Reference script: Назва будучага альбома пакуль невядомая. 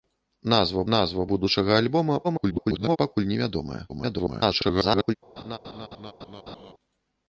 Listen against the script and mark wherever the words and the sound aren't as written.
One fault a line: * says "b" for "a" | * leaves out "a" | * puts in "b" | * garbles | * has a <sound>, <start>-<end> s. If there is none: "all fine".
* puts in "назва"
* garbles
* garbles
* has a laugh, 5.4-6.7 s